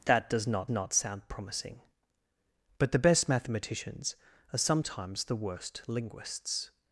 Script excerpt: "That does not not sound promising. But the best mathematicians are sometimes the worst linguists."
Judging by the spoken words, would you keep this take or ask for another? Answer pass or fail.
pass